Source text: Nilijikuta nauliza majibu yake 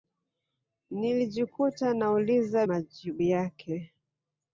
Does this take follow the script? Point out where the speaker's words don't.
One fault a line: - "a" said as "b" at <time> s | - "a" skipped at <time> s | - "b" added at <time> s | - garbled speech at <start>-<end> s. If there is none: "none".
none